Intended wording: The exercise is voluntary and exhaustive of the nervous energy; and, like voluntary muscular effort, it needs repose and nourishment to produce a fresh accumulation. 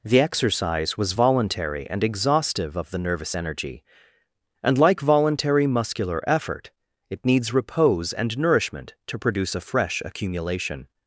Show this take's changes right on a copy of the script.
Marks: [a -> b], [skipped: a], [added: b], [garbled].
The exercise [is -> was] voluntary and exhaustive of the nervous energy; and, like voluntary muscular effort, it needs repose and nourishment to produce a fresh accumulation.